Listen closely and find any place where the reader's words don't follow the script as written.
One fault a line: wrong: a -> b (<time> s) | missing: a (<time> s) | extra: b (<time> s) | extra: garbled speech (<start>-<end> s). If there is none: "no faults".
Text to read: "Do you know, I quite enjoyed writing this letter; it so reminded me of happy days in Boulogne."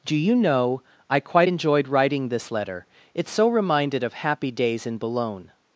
missing: me (4.0 s)